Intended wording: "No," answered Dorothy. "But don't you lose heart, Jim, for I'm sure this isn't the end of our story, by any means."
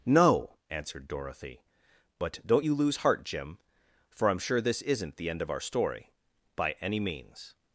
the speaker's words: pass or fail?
pass